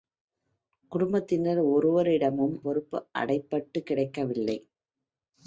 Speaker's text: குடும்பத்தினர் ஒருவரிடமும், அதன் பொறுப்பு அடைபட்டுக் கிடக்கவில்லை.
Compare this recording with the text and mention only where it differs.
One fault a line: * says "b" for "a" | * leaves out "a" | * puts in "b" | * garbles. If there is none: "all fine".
* leaves out "அதன்"